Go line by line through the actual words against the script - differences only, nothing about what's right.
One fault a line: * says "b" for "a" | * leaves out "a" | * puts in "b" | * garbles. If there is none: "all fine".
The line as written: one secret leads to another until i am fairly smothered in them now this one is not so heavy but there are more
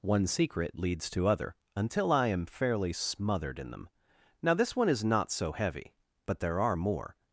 * says "other" for "another"